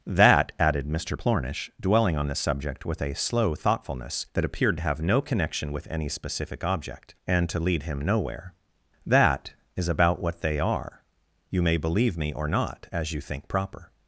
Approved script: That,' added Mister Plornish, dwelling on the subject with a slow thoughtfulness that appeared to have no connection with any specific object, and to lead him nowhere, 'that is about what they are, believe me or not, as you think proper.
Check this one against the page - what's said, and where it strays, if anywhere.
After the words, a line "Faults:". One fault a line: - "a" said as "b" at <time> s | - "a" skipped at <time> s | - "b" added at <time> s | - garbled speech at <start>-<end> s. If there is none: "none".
That,' added Mister Plornish, dwelling on the subject with a slow thoughtfulness that appeared to have no connection with any specific object, and to lead him nowhere, 'that is about what they are, you may believe me or not, as you think proper.
Faults:
- "you may" added at 11.5 s